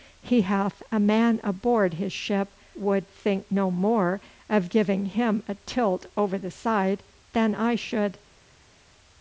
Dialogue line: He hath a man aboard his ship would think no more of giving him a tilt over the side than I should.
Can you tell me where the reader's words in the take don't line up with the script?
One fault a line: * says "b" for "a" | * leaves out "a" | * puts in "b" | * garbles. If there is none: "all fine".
all fine